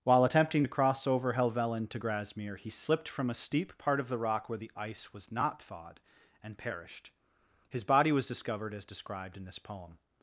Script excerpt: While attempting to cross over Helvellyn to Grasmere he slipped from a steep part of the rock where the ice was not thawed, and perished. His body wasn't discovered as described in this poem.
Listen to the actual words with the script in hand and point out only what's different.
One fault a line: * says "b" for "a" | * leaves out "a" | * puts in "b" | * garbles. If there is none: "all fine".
* says "was" for "wasn't"